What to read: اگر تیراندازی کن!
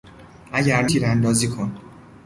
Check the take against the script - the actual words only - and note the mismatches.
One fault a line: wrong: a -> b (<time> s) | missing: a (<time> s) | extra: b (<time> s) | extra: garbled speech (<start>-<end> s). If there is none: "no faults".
no faults